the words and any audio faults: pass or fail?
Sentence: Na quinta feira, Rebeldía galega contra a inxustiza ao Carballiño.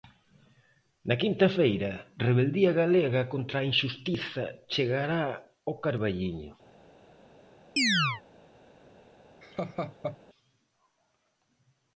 fail